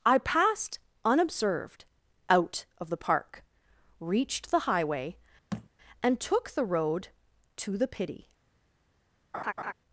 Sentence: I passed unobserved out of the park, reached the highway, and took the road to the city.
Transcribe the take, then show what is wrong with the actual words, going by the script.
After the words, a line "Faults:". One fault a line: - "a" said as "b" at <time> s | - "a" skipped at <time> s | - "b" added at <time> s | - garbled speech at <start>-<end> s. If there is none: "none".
I passed unobserved out of the park, reached the highway, and took the road to the pity.
Faults:
- "city" said as "pity" at 7.9 s